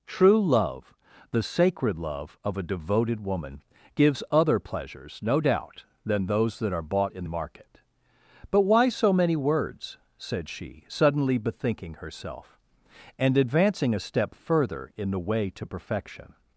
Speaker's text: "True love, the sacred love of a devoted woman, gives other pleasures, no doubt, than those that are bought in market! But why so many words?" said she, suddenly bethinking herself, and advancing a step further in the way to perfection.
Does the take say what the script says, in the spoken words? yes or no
yes